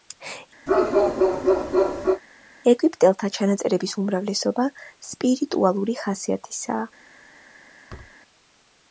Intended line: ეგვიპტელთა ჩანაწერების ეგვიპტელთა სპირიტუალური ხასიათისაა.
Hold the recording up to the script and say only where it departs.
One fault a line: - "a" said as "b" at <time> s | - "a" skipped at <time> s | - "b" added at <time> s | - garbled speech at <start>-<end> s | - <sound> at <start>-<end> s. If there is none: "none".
- bark at 0.7-2.2 s
- "ეგვიპტელთა" said as "უმრავლესობა" at 4.0 s
- thud at 7.9-8.2 s